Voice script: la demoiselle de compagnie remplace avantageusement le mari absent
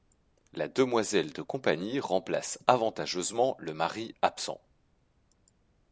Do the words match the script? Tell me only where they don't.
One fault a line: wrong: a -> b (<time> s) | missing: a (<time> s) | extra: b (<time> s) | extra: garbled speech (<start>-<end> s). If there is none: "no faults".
no faults